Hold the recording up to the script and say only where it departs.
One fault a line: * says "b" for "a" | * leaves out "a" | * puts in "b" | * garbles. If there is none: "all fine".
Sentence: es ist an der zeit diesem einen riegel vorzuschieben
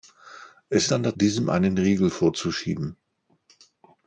* leaves out "ist"
* leaves out "zeit"